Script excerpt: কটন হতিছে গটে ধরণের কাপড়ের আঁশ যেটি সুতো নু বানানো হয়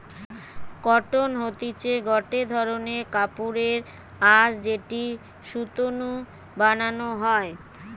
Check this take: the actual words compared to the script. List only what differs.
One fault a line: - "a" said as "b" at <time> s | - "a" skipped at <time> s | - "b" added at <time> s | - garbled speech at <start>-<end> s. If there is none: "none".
none